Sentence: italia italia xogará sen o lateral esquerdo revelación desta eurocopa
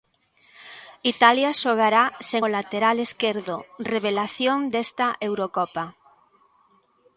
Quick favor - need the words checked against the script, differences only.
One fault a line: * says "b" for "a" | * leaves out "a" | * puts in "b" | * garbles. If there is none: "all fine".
* leaves out "italia"